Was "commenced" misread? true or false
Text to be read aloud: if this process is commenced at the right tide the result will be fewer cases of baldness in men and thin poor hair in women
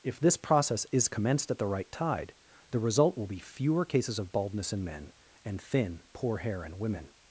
false